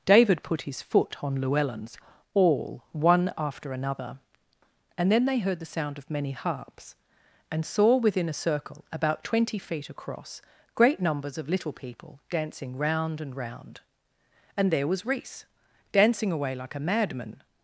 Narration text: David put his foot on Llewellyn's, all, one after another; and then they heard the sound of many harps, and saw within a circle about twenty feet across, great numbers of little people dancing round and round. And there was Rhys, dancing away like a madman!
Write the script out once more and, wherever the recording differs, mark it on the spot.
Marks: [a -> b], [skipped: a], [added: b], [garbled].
David put his foot on Llewellyn's, all, one after another; and then they heard the sound of many harps, and saw within a circle about twenty feet across, great numbers of little people dancing round and round. And there was Rhys, dancing away like a madman!